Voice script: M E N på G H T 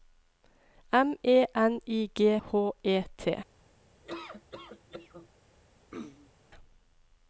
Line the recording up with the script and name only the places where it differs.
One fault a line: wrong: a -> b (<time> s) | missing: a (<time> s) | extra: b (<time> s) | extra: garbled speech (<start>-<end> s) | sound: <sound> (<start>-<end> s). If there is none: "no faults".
wrong: på -> I (1.9 s)
extra: E (2.8 s)
sound: laugh (4.0-5.3 s)
sound: throat clearing (5.9-6.3 s)